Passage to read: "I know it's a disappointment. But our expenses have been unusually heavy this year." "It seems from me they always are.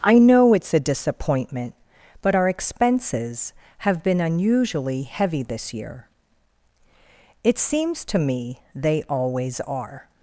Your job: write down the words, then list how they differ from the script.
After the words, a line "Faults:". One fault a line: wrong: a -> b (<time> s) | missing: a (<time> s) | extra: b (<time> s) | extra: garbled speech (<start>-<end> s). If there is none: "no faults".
"I know it's a disappointment. But our expenses have been unusually heavy this year." "It seems to me they always are.
Faults:
wrong: from -> to (8.1 s)